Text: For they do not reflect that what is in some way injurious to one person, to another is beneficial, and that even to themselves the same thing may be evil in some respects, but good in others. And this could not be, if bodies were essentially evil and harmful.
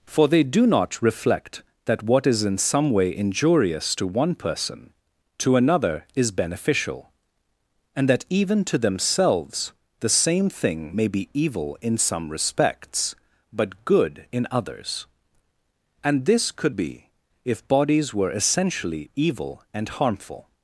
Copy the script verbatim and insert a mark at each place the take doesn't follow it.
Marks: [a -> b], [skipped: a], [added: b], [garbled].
For they do not reflect that what is in some way injurious to one person, to another is beneficial, and that even to themselves the same thing may be evil in some respects, but good in others. And this could [skipped: not] be, if bodies were essentially evil and harmful.